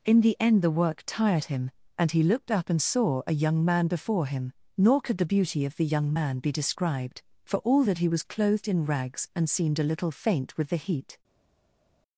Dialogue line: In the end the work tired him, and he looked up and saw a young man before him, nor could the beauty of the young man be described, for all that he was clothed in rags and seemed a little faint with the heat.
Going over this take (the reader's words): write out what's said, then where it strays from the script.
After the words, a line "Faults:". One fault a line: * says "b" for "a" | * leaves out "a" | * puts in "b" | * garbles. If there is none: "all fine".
In the end the work tired him, and he looked up and saw a young man before him, nor could the beauty of the young man be described, for all that he was clothed in rags and seemed a little faint with the heat.
Faults:
all fine